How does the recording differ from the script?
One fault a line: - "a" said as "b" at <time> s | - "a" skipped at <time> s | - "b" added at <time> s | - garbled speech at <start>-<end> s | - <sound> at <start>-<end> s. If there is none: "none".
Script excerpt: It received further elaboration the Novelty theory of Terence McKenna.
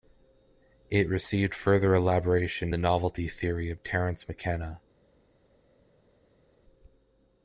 none